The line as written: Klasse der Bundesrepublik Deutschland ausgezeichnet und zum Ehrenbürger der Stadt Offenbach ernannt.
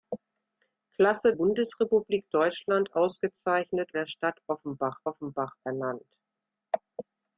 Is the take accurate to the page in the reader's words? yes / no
no